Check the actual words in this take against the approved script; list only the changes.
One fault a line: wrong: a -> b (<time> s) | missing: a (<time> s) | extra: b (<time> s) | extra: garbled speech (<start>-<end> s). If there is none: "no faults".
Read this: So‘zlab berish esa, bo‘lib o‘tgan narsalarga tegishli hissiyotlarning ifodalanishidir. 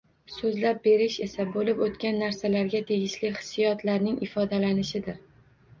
no faults